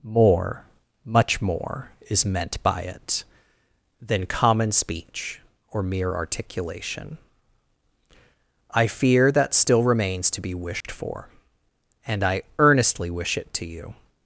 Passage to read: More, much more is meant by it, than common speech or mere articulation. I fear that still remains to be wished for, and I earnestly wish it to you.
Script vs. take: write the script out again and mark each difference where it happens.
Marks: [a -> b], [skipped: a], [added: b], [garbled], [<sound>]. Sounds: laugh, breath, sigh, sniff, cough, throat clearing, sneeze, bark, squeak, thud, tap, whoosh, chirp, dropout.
More, much more is meant by it, than common speech or mere articulation. I fear that still remains to be wished [dropout] for, and I earnestly wish it to you.